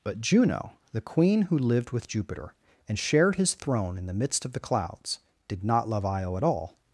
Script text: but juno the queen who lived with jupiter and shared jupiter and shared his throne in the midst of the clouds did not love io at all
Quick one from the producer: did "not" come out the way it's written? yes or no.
yes